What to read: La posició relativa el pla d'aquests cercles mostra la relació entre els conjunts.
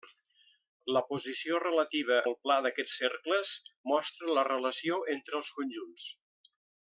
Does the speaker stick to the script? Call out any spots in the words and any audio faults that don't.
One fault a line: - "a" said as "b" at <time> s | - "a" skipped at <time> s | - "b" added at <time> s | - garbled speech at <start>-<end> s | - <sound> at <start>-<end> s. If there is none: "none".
none